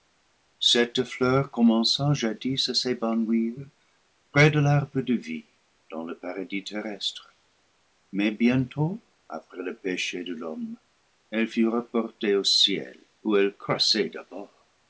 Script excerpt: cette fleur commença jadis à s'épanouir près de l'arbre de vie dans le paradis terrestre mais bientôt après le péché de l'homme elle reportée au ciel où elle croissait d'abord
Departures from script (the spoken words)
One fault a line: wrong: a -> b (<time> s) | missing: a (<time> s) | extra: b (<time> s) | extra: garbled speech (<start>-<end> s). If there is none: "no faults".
extra: fut (11.5 s)